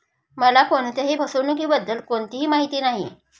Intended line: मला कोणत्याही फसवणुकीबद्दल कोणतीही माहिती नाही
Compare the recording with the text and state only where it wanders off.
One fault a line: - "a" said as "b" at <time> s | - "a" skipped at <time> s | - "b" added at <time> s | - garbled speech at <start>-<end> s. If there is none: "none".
none